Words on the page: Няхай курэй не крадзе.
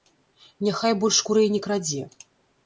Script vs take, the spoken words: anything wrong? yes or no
yes